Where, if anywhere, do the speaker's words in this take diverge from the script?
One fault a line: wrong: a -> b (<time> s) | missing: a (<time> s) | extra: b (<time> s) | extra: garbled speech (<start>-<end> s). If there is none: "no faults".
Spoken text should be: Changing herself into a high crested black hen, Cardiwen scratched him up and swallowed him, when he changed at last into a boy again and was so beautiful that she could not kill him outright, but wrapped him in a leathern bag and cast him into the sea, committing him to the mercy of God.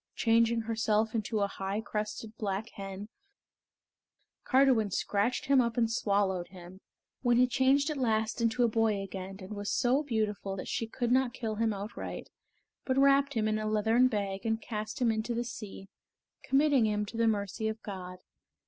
no faults